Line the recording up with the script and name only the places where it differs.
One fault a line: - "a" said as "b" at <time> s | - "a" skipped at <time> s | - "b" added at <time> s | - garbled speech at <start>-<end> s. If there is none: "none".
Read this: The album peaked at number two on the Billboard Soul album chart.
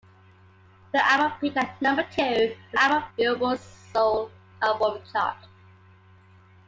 - "the" said as "album" at 2.8 s